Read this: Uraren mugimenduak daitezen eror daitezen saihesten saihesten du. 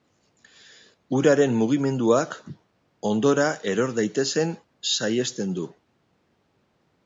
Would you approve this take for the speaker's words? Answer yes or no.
no